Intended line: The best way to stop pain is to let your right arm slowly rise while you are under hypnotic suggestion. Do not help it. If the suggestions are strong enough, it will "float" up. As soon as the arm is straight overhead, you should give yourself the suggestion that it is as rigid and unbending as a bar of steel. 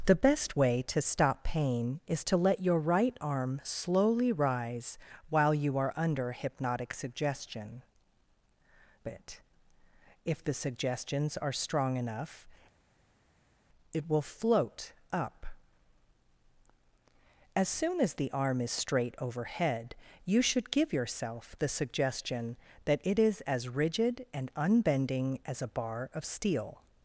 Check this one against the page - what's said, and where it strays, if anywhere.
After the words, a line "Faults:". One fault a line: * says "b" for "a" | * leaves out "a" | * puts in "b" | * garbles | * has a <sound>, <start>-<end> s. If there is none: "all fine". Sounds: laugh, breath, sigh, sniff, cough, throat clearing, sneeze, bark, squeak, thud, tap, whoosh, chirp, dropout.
The best way to stop pain is to let your right arm slowly rise while you are under hypnotic suggestion. It. If the suggestions are strong enough, it will "float" up. As soon as the arm is straight overhead, you should give yourself the suggestion that it is as rigid and unbending as a bar of steel.
Faults:
* leaves out "Do not help"